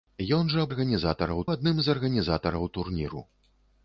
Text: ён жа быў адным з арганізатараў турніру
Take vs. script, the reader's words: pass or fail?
fail